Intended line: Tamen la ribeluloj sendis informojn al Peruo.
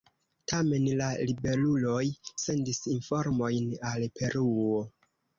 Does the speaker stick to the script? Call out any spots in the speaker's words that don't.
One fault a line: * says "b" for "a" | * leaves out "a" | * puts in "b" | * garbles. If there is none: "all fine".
all fine